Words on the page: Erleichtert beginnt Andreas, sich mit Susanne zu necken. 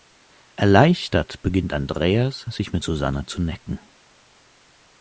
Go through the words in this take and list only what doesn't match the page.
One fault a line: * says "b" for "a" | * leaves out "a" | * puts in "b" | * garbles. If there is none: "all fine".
all fine